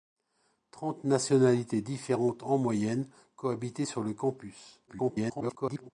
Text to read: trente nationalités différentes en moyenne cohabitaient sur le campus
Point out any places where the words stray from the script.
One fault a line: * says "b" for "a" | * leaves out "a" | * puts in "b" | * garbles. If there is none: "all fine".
* garbles